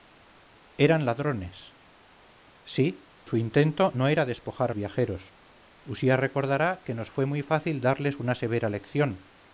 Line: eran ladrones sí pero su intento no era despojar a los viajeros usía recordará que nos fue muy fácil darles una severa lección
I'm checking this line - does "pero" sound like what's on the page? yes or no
no